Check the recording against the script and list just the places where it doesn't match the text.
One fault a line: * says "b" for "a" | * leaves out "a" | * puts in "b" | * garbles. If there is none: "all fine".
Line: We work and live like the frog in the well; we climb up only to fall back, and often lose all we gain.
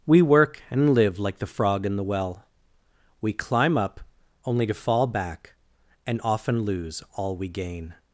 all fine